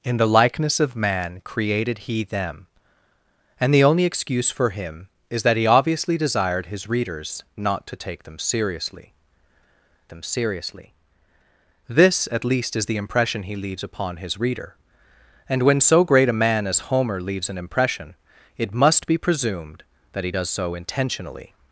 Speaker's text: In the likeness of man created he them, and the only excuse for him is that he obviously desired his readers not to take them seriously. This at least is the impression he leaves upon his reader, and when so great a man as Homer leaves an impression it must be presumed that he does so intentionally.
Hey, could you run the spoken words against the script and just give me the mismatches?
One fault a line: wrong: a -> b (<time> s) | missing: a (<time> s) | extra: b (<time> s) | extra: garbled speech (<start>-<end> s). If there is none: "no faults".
extra: them seriously (10.1 s)